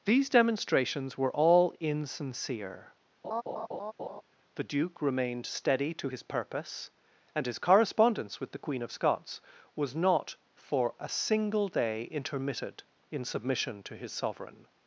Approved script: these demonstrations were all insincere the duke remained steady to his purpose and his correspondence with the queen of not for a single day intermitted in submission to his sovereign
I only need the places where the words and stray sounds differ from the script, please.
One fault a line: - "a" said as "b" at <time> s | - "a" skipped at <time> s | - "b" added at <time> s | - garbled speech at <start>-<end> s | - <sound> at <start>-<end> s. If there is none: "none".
- laugh at 3.2-4.2 s
- "scots was" added at 8.9 s